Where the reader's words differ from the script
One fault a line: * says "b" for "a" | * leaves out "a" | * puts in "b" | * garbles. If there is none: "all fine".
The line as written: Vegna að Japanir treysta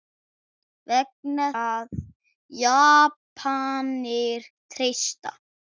all fine